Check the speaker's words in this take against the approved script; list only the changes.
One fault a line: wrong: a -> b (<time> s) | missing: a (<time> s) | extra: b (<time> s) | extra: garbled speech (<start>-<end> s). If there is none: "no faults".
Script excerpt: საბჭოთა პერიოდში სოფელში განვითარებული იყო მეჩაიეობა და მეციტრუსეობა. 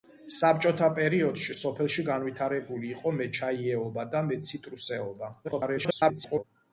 extra: garbled speech (5.4-6.4 s)